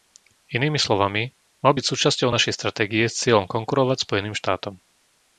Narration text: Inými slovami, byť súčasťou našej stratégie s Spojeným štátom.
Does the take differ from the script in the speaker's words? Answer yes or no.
yes